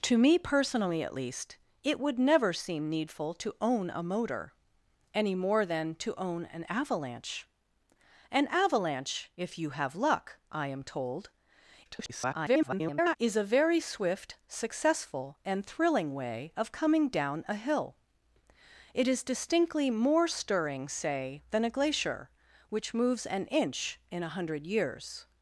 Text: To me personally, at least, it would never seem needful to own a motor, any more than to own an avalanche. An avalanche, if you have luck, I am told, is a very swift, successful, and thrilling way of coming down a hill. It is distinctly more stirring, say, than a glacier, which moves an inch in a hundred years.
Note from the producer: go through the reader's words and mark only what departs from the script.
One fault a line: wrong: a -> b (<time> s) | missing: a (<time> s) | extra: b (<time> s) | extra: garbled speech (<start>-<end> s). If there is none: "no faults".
extra: garbled speech (11.9-13.2 s)